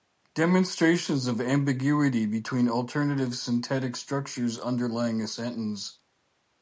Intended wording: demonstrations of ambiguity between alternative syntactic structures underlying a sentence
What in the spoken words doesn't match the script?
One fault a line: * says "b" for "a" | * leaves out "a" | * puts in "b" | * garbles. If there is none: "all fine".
all fine